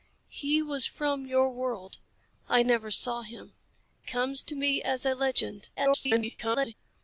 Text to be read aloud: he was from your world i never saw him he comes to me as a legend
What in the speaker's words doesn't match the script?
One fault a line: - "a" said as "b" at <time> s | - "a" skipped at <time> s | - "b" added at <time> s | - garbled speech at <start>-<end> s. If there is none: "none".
- "he" skipped at 3.5 s
- garbled speech at 5.8-6.7 s